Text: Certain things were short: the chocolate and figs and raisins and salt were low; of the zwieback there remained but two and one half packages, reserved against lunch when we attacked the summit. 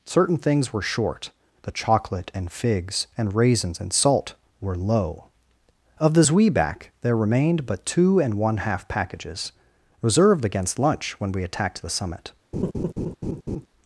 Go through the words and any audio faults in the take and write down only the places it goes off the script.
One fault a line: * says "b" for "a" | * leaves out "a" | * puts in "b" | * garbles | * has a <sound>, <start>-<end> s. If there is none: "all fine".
* has a laugh, 12.5-13.7 s